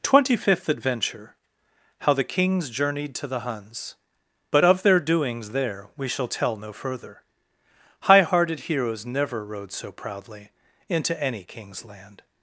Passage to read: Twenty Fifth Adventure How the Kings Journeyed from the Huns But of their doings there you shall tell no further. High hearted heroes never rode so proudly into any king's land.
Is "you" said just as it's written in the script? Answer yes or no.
no